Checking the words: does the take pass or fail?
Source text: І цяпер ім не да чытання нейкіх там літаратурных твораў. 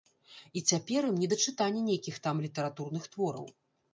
pass